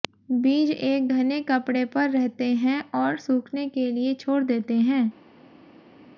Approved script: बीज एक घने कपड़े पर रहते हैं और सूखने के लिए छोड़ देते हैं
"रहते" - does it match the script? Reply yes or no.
yes